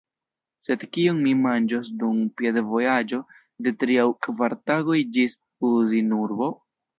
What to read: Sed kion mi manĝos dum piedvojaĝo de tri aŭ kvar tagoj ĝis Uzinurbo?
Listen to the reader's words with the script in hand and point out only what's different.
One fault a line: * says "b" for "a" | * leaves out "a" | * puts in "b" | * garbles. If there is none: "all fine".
all fine